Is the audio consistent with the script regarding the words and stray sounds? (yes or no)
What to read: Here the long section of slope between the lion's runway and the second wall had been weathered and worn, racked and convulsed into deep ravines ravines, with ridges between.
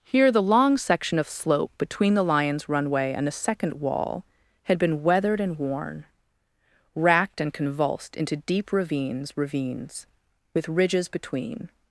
yes